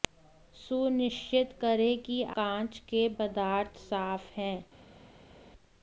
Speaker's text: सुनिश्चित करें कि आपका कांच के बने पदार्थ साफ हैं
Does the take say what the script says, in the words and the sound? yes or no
no